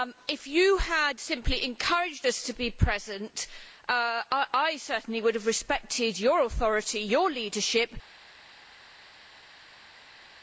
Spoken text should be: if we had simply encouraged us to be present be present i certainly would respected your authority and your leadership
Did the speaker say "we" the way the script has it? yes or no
no